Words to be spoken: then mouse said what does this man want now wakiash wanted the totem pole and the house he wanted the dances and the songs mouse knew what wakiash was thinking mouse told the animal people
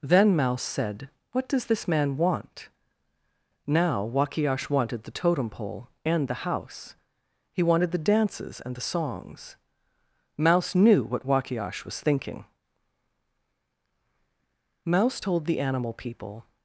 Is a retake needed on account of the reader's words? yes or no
no